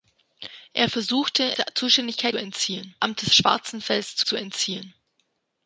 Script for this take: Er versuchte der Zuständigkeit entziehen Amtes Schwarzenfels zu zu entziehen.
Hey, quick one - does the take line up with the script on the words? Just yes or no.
yes